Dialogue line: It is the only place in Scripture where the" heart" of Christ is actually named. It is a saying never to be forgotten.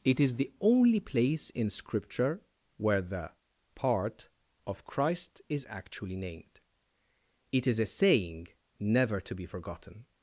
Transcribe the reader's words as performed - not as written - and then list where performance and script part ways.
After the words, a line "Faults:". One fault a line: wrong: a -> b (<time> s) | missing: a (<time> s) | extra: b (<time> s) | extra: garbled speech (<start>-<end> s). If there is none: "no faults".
It is the only place in Scripture where the" part" of Christ is actually named. It is a saying never to be forgotten.
Faults:
wrong: heart -> part (3.7 s)